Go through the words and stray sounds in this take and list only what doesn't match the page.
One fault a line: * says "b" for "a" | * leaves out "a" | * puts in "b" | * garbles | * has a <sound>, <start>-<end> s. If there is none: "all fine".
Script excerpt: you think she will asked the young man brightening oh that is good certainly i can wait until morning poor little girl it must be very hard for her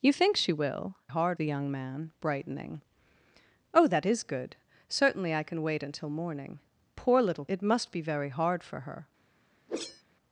* says "hard" for "asked"
* leaves out "girl"
* has a whoosh, 9.7-10.0 s